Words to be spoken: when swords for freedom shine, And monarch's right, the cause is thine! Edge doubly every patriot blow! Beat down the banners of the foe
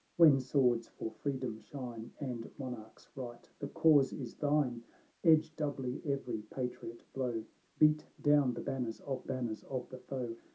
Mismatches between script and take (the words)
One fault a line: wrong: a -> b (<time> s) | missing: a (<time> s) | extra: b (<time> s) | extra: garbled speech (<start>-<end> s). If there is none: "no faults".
extra: banners of (9.2 s)